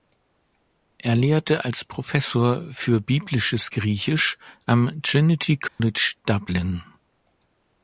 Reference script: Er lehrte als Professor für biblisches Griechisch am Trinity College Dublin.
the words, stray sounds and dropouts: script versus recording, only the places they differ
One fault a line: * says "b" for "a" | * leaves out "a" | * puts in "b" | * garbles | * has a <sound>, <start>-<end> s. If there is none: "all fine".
* has a dropout, 5.7-5.8 s